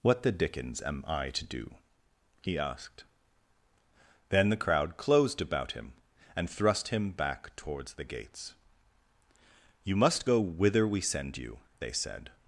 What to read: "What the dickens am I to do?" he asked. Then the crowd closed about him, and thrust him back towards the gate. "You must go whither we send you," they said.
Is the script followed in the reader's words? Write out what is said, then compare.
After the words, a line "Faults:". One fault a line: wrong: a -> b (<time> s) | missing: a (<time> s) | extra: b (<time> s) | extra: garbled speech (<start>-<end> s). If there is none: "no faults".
"What the dickens am I to do?" he asked. Then the crowd closed about him, and thrust him back towards the gates. "You must go whither we send you," they said.
Faults:
wrong: gate -> gates (8.0 s)